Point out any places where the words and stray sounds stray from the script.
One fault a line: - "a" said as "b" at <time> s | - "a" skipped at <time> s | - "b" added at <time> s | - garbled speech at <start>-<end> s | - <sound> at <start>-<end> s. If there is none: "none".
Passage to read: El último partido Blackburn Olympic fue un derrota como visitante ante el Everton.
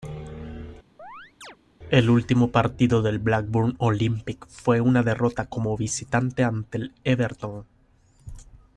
- chirp at 1.0-1.6 s
- "del" added at 3.0 s
- "un" said as "una" at 4.8 s